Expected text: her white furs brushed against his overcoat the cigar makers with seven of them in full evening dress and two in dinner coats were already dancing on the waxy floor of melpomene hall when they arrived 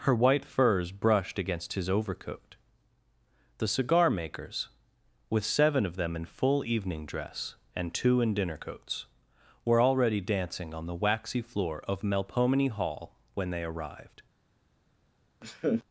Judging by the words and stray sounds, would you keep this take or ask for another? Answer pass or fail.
fail